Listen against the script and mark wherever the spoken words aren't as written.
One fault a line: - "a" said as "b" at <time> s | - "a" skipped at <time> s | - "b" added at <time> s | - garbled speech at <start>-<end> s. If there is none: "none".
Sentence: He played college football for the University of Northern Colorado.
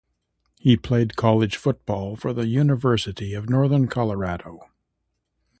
none